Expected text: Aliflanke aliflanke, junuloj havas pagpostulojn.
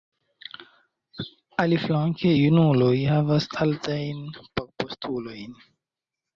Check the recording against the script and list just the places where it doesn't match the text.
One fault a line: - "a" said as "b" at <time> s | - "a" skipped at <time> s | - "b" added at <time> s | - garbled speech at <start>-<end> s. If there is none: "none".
- "aliflanke" skipped at 2.3 s
- "altajn" added at 3.7 s